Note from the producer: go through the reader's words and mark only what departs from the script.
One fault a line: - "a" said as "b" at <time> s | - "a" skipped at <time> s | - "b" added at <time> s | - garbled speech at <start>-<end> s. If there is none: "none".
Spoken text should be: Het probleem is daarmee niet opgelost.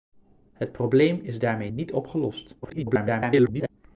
- garbled speech at 2.6-3.7 s